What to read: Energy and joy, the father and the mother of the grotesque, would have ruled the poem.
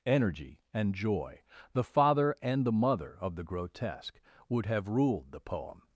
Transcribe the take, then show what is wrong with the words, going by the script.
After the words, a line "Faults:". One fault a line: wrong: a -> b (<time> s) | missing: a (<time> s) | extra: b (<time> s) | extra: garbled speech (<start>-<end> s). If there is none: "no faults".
Energy and joy, the father and the mother of the grotesque, would have ruled the poem.
Faults:
no faults